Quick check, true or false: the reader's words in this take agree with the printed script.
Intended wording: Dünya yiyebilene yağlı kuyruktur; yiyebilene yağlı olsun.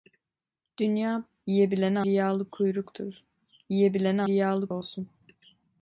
true